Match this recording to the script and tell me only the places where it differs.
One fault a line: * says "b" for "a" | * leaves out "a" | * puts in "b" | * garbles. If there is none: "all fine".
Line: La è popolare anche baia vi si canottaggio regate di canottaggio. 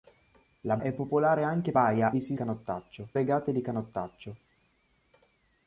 all fine